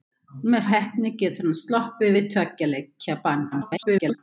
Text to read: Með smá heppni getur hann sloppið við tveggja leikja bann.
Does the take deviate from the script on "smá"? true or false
true